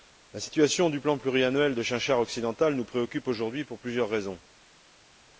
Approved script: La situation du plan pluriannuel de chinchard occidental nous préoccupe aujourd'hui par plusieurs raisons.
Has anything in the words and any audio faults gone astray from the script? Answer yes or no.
yes